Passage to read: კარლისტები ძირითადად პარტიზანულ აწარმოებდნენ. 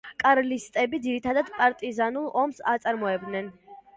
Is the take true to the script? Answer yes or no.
no